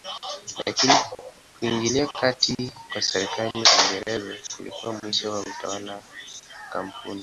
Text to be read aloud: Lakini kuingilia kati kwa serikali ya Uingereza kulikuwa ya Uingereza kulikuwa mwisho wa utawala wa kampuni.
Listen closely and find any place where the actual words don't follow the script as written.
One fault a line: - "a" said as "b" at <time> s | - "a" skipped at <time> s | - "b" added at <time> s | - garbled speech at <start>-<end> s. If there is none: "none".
- "ya Uingereza kulikuwa" skipped at 5.0 s